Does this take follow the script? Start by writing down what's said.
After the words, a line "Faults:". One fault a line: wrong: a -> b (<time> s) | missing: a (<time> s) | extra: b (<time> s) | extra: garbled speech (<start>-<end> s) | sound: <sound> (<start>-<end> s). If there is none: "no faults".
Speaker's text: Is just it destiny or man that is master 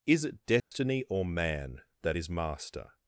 Is it destiny or man that is master
Faults:
missing: just (0.2 s)
sound: dropout (0.6-0.7 s)